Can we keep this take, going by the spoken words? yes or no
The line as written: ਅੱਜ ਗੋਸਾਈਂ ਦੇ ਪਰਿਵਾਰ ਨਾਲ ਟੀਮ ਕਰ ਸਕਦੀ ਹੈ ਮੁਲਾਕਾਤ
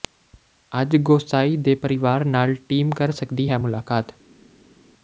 yes